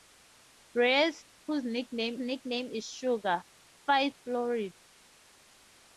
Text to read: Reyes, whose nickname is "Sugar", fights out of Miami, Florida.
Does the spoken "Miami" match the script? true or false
false